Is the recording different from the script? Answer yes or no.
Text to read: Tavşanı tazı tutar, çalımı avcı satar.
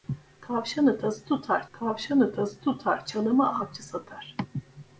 yes